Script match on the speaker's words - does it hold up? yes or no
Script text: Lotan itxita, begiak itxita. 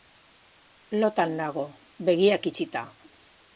no